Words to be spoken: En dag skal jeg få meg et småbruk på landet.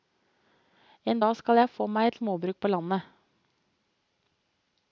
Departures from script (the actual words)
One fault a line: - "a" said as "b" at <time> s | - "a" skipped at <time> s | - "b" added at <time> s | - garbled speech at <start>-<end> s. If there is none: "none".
none